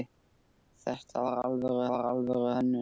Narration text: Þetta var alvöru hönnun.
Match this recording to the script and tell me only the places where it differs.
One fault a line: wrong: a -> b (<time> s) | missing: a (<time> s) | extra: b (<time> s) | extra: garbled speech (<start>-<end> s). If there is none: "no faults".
extra: var alvöru (1.9 s)